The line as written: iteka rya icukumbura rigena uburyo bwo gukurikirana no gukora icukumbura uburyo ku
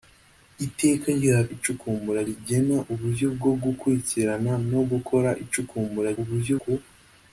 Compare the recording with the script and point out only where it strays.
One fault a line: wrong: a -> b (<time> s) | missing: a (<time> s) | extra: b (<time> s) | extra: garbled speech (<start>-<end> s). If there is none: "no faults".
no faults